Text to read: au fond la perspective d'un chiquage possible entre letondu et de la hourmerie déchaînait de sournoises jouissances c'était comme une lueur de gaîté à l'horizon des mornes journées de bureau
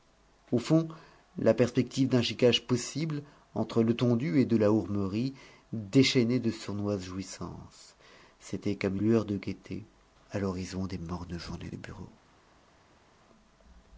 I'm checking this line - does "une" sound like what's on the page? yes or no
no